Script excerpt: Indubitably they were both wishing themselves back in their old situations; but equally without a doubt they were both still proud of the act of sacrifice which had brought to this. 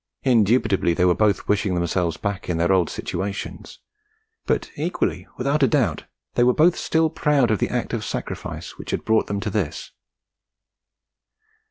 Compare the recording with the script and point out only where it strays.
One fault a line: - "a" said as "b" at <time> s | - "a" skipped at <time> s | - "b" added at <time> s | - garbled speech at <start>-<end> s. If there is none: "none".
- "them" added at 9.3 s